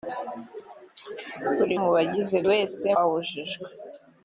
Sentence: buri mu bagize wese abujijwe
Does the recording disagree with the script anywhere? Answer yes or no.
no